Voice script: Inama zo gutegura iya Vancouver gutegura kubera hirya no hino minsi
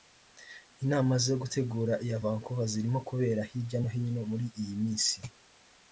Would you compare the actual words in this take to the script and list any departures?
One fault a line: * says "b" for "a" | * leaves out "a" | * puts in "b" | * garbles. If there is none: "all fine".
* says "zirimo" for "gutegura"
* puts in "muri iyi"